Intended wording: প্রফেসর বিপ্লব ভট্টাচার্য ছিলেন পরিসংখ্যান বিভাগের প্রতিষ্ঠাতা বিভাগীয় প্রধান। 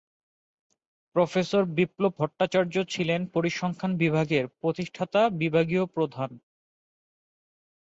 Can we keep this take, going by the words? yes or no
yes